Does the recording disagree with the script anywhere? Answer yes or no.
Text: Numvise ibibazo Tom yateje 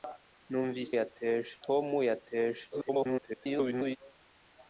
yes